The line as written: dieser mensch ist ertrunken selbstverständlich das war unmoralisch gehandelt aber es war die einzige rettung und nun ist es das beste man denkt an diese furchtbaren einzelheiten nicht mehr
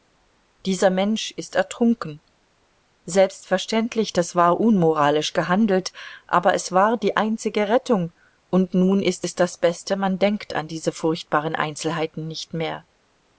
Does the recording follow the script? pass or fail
pass